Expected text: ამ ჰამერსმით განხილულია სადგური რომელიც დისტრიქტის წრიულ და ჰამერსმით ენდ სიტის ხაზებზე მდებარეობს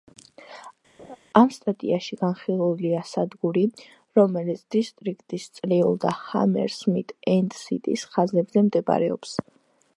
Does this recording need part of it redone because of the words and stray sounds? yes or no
yes